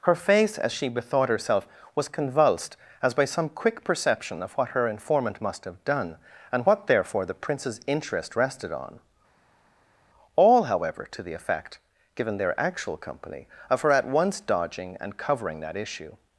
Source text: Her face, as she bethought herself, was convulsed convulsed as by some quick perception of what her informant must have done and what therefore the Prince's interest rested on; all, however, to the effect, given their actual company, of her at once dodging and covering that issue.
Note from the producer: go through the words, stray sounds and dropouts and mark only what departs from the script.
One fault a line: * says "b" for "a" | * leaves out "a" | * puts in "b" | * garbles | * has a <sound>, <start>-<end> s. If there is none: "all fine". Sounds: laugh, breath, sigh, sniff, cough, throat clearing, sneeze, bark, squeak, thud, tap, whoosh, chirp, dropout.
* leaves out "convulsed"